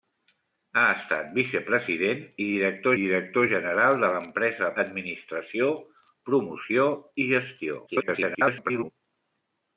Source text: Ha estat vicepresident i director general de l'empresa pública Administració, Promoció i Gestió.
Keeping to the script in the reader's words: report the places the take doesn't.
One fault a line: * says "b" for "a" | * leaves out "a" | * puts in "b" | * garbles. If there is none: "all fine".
* puts in "director"
* leaves out "pública"
* garbles